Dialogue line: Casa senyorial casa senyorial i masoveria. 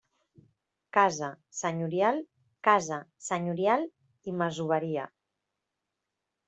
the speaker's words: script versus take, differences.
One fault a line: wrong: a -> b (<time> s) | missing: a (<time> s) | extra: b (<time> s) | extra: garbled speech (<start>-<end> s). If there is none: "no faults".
no faults